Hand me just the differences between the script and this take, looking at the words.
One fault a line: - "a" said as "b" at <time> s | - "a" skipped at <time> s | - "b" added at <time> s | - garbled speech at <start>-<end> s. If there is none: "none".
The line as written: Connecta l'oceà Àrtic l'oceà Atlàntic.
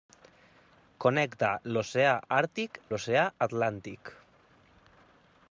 none